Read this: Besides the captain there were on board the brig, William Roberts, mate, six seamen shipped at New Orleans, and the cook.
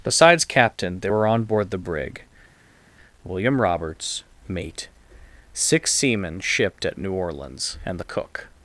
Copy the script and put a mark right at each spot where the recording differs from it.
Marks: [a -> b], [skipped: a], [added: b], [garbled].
Besides [skipped: the] captain there were on board the brig, William Roberts, mate, six seamen shipped at New Orleans, and the cook.